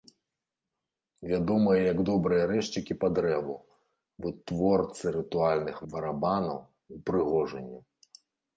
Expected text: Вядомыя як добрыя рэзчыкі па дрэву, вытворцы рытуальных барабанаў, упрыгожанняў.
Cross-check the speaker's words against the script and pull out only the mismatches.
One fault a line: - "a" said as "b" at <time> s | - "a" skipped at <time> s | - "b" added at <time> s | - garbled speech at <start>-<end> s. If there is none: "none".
none